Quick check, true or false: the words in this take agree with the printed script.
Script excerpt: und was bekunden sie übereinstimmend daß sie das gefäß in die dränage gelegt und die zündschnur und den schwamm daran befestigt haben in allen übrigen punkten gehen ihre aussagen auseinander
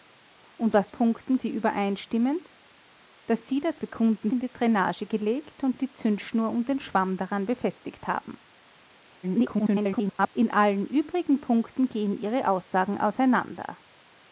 false